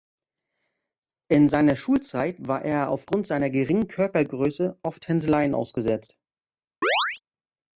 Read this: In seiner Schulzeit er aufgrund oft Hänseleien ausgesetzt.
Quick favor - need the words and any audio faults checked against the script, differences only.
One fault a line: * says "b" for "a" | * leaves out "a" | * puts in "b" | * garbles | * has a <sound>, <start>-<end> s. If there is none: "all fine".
* puts in "war"
* puts in "seiner geringen Körpergröße"
* has a chirp, 6.8-7.2 s